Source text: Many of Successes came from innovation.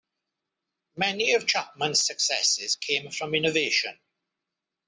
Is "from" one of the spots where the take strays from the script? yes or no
no